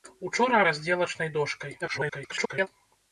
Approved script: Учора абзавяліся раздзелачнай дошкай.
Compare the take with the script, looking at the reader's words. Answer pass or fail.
fail